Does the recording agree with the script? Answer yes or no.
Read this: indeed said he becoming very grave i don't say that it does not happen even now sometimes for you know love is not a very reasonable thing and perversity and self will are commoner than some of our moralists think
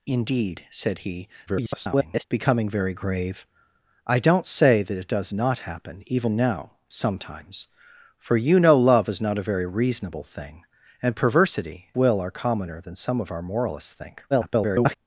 no